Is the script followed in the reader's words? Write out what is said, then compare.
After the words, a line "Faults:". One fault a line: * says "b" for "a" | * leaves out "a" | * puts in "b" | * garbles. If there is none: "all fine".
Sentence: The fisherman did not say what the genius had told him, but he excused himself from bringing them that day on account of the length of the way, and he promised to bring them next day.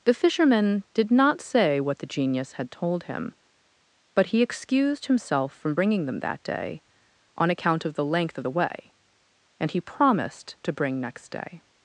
The fisherman did not say what the genius had told him, but he excused himself from bringing them that day on account of the length of the way, and he promised to bring next day.
Faults:
* leaves out "them"